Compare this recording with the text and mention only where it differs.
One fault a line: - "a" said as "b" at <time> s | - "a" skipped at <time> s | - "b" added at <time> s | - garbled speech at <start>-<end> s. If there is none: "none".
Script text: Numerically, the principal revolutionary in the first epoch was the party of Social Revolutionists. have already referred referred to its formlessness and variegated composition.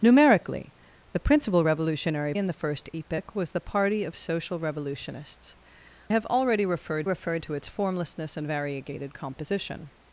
none